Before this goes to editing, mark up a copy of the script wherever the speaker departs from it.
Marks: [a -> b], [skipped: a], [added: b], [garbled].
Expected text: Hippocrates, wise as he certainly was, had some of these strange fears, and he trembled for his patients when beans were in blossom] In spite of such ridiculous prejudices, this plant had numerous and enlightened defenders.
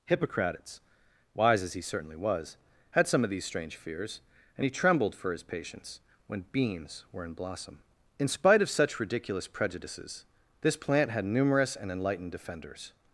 Hippocrates, wise as he certainly was, had some of these strange fears, and he trembled for his patients when beans were in blossom] In spite of such ridiculous prejudices, this plant had numerous and enlightened defenders.